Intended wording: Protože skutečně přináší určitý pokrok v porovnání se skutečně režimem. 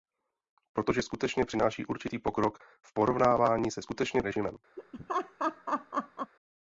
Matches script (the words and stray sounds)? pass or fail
fail